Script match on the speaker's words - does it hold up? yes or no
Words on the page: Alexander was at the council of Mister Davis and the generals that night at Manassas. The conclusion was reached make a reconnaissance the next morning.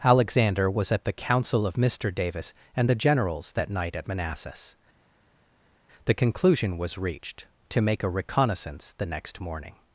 no